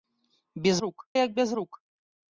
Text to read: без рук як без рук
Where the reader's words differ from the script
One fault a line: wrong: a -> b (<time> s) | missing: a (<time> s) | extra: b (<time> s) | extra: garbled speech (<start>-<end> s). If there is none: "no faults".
no faults